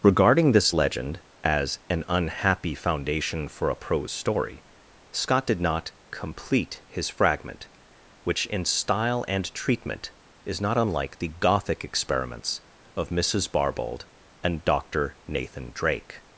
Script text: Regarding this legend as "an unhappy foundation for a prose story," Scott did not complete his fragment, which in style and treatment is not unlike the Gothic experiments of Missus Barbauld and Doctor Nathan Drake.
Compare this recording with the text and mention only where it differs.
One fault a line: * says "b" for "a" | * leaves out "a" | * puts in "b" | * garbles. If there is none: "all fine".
all fine